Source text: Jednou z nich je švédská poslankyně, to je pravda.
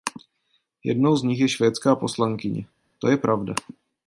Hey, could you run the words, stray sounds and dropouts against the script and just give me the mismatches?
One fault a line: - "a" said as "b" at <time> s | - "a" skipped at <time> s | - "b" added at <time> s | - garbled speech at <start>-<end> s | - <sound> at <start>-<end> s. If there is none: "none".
none